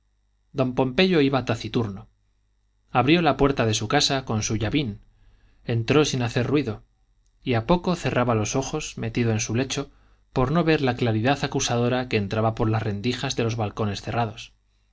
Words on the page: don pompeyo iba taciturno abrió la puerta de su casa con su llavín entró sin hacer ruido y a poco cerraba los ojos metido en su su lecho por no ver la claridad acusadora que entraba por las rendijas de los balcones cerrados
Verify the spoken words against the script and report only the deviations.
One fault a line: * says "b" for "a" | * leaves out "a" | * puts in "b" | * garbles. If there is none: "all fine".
* leaves out "su"